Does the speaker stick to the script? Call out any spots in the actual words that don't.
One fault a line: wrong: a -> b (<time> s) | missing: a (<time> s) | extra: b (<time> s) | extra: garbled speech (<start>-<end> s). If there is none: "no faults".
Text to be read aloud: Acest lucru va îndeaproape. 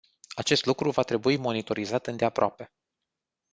extra: trebui monitorizat (1.0 s)